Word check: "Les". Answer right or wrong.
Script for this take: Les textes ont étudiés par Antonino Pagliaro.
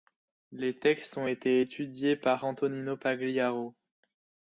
right